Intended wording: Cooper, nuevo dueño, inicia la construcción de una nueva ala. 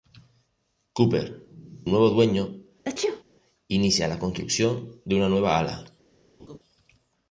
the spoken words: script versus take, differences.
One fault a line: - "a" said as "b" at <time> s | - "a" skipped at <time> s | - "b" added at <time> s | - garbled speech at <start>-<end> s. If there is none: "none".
none